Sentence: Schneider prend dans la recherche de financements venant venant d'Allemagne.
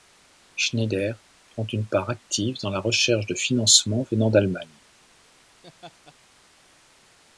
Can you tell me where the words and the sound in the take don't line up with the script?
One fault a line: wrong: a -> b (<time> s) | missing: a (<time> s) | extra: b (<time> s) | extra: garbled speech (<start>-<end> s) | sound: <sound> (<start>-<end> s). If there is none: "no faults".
extra: une part active (1.7 s)
missing: venant (4.3 s)
sound: laugh (5.6-6.1 s)